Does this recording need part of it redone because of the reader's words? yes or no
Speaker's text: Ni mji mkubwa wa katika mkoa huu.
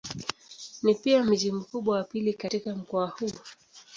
yes